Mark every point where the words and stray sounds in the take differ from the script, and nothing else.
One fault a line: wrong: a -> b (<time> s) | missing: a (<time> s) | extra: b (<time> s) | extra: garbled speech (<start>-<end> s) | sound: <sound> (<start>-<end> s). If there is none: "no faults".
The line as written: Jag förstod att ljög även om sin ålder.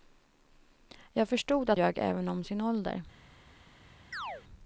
sound: chirp (4.1-4.4 s)